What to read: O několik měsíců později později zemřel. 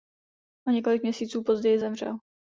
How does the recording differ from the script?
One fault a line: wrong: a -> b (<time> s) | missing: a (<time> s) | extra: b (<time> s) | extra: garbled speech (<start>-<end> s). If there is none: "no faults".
missing: později (1.8 s)